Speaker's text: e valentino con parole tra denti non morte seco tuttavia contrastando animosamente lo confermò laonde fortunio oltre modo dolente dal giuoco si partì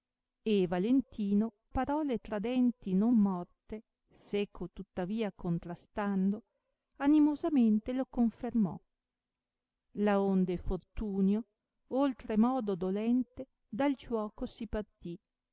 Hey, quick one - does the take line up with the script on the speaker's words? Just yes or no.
no